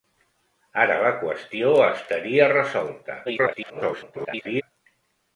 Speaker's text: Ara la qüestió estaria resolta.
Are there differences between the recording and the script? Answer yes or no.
yes